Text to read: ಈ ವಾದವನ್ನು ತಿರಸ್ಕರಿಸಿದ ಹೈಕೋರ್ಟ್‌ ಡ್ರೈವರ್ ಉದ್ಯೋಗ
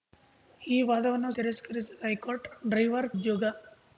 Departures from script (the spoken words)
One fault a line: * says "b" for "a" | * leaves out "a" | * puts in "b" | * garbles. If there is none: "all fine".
all fine